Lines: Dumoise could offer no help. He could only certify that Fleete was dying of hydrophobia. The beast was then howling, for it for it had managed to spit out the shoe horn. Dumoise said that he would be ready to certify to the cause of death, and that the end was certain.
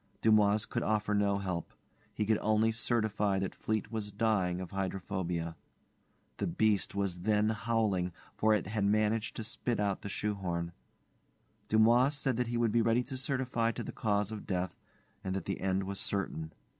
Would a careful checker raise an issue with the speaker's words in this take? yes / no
yes